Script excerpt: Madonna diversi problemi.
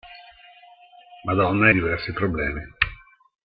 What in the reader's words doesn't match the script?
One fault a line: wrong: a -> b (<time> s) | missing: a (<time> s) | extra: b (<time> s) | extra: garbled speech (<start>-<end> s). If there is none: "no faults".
no faults